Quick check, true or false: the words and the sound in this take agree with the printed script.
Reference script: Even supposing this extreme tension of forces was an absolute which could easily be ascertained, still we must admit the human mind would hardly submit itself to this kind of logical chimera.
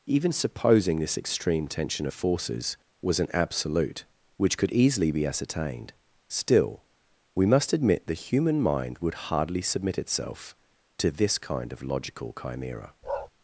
false